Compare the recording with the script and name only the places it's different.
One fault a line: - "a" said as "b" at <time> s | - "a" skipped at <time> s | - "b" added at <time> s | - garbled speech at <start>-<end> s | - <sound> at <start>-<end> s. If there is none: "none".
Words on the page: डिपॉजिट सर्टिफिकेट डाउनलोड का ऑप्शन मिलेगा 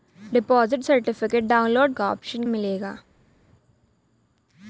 none